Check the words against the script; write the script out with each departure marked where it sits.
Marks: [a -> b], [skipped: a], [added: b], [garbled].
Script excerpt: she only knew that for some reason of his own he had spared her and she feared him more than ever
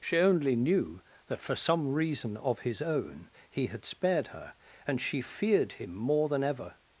she only knew that for some reason of his own he had spared her and she feared him more than ever